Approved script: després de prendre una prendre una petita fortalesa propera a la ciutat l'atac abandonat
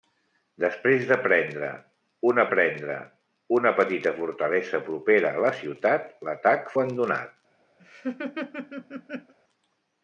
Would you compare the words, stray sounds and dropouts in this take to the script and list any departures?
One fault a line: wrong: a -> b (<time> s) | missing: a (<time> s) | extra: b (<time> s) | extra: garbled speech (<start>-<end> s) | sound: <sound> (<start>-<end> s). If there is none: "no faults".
sound: laugh (7.8-9.3 s)